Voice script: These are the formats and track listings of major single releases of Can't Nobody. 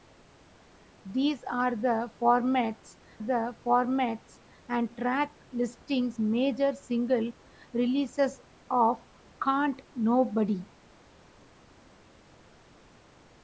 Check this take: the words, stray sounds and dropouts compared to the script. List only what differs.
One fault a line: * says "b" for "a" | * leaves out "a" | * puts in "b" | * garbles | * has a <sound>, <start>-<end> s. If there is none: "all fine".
* puts in "the formats"
* leaves out "of"